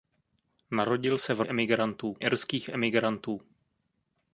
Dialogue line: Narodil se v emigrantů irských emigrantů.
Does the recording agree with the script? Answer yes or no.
yes